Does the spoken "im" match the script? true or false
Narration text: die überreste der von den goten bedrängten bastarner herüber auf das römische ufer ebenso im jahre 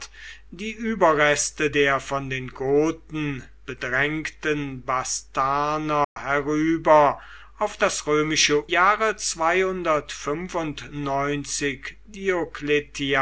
false